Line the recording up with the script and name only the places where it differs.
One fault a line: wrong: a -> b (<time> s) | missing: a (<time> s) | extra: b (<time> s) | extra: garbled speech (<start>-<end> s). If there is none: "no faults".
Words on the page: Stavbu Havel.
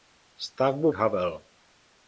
no faults